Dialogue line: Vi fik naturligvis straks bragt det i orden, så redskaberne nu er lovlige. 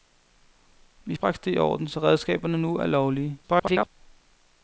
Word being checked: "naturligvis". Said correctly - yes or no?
no